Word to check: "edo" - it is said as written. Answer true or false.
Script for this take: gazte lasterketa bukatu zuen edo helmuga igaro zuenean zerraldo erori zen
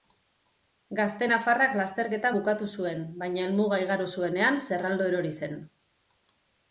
false